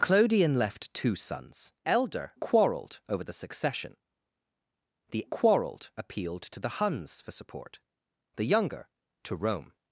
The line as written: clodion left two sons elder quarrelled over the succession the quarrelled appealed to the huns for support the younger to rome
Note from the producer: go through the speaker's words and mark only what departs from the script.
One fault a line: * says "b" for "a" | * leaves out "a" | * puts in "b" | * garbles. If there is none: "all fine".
all fine